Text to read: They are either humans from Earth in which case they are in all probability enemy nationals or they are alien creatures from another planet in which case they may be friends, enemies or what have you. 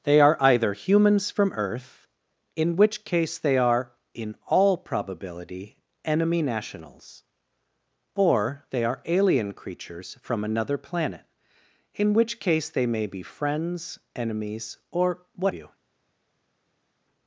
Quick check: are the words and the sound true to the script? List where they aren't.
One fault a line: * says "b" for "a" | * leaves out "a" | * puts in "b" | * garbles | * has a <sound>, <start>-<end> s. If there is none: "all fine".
* leaves out "have"